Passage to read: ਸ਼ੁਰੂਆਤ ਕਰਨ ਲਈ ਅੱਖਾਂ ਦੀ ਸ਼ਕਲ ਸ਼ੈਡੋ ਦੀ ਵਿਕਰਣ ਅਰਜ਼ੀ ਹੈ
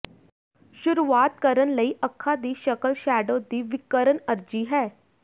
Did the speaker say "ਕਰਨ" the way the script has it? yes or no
yes